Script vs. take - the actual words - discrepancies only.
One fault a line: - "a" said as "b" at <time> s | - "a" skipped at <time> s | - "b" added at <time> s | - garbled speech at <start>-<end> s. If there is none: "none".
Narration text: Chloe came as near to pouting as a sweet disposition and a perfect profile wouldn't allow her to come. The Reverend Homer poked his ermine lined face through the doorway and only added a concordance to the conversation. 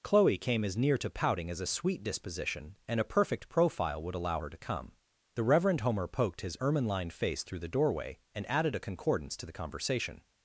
- "wouldn't" said as "would" at 4.0 s
- "only" skipped at 8.5 s